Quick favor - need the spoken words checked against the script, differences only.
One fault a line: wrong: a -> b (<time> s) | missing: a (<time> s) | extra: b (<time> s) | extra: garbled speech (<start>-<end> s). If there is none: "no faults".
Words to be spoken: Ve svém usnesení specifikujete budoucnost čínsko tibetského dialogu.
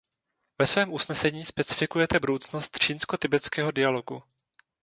no faults